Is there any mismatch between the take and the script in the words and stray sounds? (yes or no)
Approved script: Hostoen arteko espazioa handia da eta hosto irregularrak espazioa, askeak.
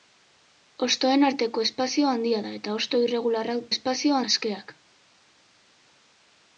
no